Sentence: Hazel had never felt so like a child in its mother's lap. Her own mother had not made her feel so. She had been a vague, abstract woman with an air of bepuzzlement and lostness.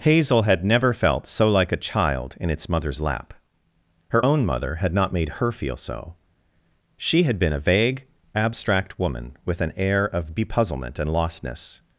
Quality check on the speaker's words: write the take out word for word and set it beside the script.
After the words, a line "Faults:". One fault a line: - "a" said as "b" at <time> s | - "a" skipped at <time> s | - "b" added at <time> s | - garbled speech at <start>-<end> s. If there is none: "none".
Hazel had never felt so like a child in its mother's lap. Her own mother had not made her feel so. She had been a vague, abstract woman with an air of bepuzzlement and lostness.
Faults:
none